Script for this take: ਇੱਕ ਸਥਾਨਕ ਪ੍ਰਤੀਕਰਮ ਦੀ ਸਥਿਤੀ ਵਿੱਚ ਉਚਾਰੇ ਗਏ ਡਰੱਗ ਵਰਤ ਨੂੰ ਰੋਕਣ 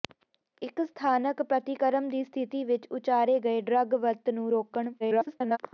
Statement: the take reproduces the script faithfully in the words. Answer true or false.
false